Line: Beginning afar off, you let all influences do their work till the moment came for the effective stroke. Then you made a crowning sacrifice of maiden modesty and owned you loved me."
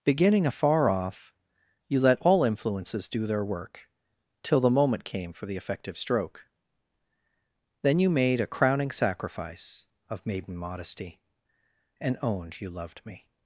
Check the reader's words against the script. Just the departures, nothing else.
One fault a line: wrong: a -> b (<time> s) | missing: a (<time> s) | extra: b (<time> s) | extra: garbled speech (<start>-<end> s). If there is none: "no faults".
no faults